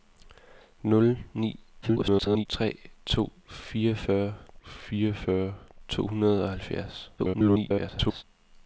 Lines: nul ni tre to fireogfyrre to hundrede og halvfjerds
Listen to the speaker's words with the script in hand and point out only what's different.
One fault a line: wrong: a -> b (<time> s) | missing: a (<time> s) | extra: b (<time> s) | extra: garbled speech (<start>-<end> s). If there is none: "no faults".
extra: garbled speech (1.8-2.5 s)
extra: fireogfyrre (4.6 s)
extra: garbled speech (7.2-8.2 s)